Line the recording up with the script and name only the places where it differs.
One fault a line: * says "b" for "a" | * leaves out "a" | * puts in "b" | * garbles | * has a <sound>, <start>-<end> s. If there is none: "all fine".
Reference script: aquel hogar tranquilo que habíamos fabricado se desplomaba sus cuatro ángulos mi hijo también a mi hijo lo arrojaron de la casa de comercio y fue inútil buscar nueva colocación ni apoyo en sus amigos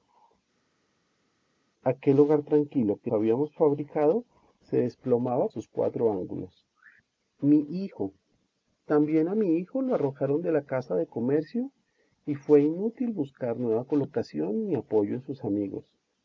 all fine